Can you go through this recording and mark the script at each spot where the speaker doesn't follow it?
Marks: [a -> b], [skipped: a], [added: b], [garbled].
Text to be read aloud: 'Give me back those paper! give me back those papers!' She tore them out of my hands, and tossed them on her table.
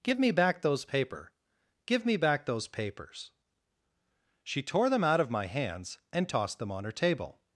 'Give me back those paper! give me back those papers!' She tore them out of my hands, and tossed them on her table.